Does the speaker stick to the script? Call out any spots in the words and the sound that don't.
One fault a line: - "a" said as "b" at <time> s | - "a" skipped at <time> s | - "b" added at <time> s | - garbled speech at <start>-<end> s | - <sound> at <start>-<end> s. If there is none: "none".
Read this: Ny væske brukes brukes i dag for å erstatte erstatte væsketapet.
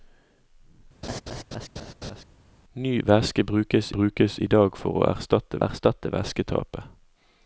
- laugh at 1.0-2.2 s